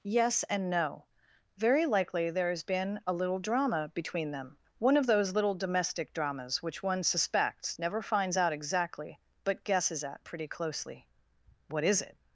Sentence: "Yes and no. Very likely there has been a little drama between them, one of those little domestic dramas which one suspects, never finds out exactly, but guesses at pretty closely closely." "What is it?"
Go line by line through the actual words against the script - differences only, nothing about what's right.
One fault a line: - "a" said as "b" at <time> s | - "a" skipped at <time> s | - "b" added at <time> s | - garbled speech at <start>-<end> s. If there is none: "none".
- "closely" skipped at 11.1 s